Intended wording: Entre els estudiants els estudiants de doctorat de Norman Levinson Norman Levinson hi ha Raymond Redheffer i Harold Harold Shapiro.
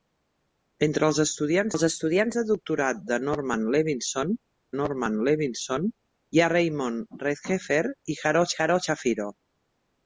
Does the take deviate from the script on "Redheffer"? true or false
false